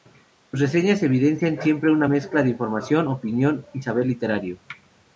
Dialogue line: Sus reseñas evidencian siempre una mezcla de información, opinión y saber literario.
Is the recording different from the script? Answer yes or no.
no